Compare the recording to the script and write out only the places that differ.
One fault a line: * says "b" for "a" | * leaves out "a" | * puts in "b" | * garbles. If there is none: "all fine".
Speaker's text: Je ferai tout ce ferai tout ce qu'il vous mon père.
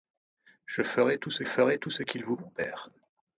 all fine